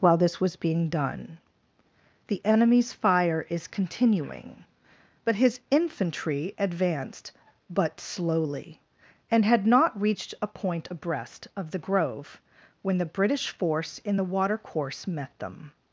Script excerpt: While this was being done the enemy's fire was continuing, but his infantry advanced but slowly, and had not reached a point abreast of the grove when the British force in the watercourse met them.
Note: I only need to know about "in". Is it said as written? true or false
true